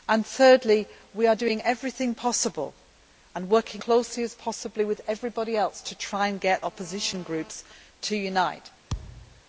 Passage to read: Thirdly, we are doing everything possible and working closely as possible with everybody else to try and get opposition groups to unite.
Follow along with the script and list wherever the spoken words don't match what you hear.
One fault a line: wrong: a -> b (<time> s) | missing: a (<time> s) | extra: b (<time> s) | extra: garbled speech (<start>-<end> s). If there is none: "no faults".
no faults